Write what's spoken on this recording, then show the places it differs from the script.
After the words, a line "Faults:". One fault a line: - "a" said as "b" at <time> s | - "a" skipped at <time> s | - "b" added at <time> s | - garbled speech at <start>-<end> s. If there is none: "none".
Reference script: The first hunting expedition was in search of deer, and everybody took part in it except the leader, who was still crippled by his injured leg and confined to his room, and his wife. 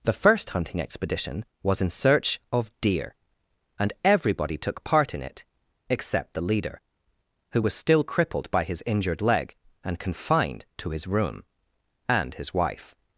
The first hunting expedition was in search of deer, and everybody took part in it except the leader, who was still crippled by his injured leg and confined to his room, and his wife.
Faults:
none